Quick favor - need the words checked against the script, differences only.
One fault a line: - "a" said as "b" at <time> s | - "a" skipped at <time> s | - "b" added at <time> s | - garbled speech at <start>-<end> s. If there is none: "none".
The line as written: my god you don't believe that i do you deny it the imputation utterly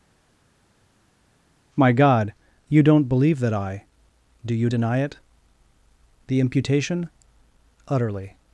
none